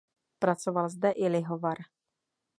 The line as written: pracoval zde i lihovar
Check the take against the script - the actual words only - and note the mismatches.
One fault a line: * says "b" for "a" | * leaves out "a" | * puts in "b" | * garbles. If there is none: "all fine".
all fine